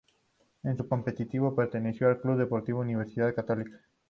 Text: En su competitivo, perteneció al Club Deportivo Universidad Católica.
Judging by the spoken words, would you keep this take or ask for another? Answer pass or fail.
pass